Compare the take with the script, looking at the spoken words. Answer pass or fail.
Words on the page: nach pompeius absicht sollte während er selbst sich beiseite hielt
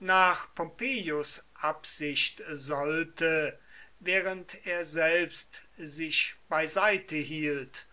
pass